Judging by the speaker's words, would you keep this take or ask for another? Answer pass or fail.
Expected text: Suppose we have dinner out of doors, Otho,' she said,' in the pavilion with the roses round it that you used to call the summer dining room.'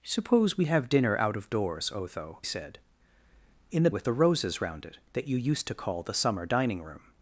fail